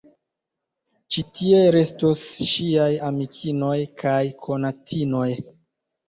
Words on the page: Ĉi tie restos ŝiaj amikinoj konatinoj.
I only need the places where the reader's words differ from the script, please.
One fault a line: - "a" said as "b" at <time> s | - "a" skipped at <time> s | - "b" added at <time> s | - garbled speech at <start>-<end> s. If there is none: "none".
- "kaj" added at 4.0 s